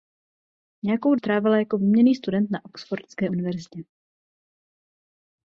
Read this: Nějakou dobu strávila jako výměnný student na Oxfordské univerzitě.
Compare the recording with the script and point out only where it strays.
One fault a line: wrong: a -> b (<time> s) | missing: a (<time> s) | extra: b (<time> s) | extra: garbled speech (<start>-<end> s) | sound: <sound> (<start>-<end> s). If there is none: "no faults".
missing: dobu (1.1 s)